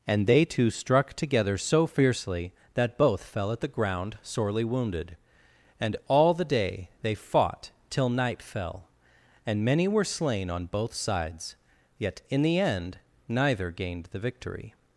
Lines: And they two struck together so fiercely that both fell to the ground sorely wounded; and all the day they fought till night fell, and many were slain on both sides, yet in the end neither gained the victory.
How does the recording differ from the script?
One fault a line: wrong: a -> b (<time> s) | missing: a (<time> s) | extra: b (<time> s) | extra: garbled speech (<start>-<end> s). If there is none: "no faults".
wrong: to -> at (3.5 s)